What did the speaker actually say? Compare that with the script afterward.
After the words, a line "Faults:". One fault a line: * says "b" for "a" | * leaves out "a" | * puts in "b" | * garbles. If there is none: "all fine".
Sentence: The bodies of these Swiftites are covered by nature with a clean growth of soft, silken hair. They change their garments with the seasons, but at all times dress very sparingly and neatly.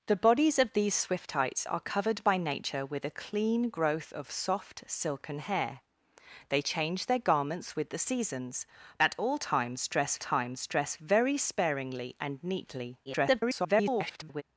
The bodies of these Swiftites are covered by nature with a clean growth of soft, silken hair. They change their garments with the seasons, at all times dress times dress very sparingly and neatly. [garbled]
Faults:
* leaves out "but"
* puts in "times dress"
* garbles